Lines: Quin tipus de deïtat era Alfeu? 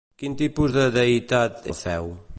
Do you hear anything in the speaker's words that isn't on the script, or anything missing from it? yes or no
yes